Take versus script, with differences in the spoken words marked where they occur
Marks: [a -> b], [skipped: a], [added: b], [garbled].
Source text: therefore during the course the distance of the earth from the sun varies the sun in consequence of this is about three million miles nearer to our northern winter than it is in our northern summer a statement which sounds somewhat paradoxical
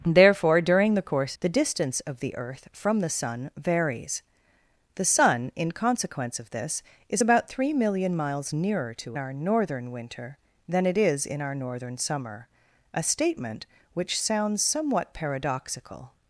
therefore during the course the distance of the earth from the sun varies the sun in consequence of this is about three million miles nearer to our northern winter than it is in our northern summer a statement which sounds somewhat paradoxical